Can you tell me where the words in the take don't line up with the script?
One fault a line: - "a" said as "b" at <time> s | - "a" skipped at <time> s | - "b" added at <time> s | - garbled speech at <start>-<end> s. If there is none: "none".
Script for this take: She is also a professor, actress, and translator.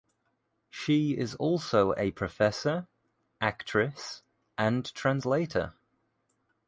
none